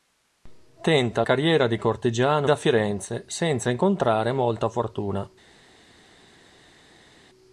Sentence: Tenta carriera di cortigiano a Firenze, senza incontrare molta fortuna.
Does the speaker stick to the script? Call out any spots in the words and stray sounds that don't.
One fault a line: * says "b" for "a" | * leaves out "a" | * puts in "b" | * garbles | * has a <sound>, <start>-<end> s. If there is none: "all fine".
all fine